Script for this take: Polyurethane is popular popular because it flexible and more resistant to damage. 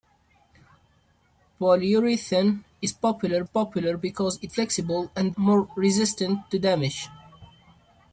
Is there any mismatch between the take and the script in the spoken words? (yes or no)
no